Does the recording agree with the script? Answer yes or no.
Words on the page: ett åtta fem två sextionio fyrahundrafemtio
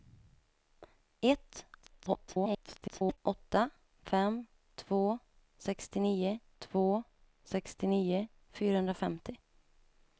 no